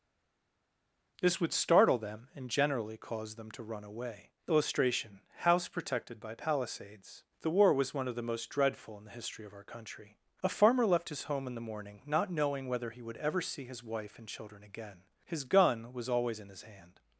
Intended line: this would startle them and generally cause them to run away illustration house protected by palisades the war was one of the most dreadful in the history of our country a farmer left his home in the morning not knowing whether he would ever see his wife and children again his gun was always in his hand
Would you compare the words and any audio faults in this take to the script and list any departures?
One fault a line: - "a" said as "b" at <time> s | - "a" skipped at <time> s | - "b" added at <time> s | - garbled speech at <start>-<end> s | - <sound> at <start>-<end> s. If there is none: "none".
none